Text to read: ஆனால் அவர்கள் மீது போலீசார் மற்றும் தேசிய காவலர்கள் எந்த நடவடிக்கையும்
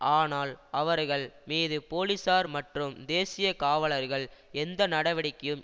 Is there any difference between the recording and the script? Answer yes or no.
no